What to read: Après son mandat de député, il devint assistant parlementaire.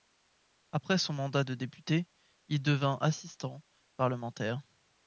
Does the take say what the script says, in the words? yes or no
yes